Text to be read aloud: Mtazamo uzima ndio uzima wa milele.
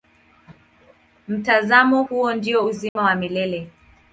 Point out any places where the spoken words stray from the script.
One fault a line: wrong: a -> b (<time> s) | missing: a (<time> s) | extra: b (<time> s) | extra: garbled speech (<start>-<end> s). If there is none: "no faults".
wrong: uzima -> huo (2.0 s)